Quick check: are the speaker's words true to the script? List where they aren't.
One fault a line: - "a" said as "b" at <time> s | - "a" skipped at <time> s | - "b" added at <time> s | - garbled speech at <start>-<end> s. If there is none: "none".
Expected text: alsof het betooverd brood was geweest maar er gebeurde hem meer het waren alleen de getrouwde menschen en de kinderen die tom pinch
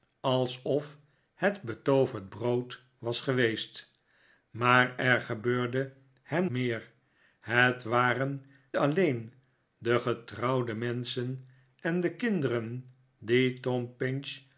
none